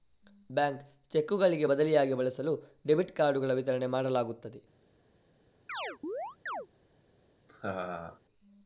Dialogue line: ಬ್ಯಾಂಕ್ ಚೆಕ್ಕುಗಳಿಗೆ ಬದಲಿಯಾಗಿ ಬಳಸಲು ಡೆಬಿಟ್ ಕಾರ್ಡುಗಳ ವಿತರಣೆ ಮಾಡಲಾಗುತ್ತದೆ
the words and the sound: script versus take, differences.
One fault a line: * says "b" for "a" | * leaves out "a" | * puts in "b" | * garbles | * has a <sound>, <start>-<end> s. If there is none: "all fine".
* has a chirp, 5.7-6.7 s
* has a laugh, 7.5-8.2 s